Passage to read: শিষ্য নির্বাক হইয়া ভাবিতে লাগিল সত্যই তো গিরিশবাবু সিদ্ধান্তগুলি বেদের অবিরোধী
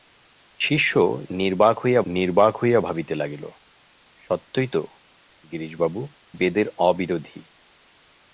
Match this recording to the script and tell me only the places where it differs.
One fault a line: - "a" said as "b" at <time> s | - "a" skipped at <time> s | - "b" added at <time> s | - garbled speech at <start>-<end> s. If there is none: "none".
- "নির্বাক হইয়া" added at 2.1 s
- "সিদ্ধান্তগুলি" skipped at 6.0 s